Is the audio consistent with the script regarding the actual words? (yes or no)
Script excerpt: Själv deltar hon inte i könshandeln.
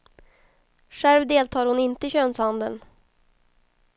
yes